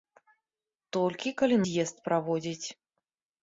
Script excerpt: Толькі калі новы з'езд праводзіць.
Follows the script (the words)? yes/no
no